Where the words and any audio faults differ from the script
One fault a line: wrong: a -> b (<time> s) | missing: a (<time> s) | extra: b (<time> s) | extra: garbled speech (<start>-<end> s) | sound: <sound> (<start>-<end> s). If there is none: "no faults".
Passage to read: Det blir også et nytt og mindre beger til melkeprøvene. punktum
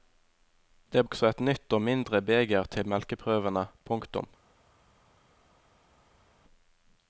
missing: blir (1.0 s)